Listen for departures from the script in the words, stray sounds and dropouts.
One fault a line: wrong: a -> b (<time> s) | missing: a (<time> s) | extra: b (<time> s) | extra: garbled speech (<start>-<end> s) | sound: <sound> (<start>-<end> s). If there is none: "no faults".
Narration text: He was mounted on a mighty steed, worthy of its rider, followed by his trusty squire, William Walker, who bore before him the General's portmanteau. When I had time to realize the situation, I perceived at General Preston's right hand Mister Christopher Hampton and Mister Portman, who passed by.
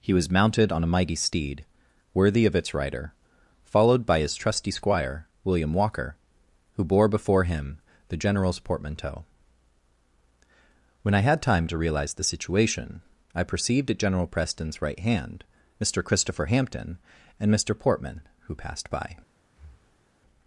sound: breath (19.4-20.1 s)